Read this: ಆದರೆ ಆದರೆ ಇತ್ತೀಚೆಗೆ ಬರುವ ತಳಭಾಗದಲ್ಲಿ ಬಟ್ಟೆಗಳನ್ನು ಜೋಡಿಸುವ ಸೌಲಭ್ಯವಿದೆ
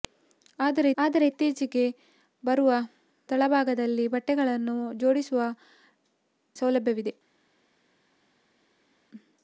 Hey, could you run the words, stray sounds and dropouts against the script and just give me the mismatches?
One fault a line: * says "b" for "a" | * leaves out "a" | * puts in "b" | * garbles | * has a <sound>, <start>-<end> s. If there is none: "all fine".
all fine